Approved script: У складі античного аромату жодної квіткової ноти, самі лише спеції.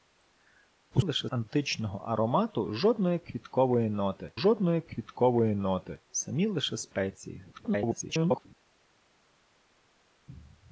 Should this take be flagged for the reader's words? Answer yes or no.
yes